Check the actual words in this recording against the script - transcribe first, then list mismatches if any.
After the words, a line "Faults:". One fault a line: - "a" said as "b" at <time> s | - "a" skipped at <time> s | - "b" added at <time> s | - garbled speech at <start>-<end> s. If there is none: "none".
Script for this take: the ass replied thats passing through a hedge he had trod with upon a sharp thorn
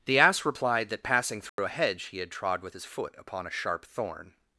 the ass replied that passing through a hedge he had trod with his foot upon a sharp thorn
Faults:
- "thats" said as "that" at 0.9 s
- "his foot" added at 2.7 s